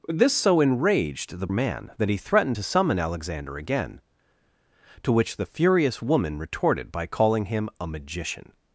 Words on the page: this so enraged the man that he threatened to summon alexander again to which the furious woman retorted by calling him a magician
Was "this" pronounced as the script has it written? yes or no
yes